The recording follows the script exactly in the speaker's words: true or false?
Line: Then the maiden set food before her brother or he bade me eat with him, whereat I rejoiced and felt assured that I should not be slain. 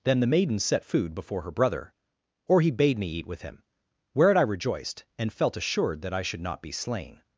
true